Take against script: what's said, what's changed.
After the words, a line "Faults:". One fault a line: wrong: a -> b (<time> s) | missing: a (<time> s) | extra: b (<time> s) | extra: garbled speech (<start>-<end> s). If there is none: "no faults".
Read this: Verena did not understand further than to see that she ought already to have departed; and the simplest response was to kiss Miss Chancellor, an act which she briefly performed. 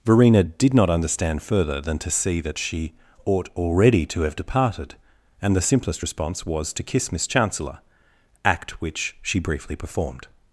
Verena did not understand further than to see that she ought already to have departed; and the simplest response was to kiss Miss Chancellor, act which she briefly performed.
Faults:
missing: an (7.8 s)